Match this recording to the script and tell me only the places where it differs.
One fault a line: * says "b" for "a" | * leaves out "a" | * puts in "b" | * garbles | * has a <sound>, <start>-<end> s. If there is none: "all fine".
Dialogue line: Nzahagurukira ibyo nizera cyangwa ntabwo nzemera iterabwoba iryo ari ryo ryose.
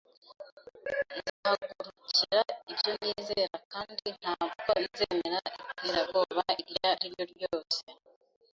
* has a dropout, 1.3-1.4 s
* says "kandi" for "cyangwa"